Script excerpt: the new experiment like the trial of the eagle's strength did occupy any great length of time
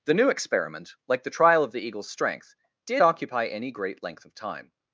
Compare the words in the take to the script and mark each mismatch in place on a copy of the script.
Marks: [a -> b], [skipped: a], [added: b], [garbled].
the new experiment like the trial of the eagle's strength did occupy any great length of time